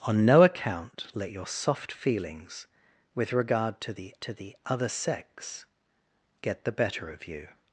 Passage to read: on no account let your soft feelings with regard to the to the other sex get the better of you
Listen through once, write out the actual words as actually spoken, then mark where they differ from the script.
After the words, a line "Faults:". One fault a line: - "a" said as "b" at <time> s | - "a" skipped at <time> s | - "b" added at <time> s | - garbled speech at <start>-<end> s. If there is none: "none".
on no account let your soft feelings with regard to the to the other sex get the better of you
Faults:
none